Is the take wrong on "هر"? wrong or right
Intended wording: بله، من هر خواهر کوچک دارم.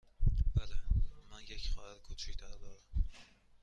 wrong